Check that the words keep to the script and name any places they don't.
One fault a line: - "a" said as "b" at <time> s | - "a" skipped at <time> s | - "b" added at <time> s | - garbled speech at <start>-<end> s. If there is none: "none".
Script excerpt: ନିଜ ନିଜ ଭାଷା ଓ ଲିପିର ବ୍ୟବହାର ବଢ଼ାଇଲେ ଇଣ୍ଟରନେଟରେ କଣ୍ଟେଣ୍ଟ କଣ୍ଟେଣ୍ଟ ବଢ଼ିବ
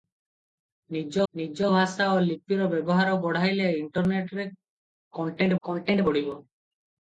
none